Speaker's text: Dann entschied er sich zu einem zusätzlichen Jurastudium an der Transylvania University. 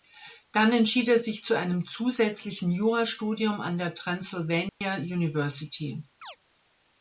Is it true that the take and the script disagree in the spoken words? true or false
false